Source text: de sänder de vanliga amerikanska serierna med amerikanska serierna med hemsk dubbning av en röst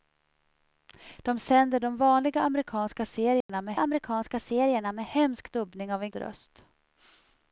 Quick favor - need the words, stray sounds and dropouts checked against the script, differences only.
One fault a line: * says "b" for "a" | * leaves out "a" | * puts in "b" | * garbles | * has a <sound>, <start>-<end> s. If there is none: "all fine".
* has a dropout, 3.4-3.5 s